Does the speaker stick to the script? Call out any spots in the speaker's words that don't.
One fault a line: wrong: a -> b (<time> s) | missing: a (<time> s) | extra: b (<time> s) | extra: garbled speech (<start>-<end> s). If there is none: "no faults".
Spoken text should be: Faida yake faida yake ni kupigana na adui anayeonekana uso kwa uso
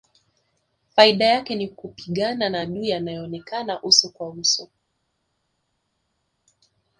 missing: faida yake (1.6 s)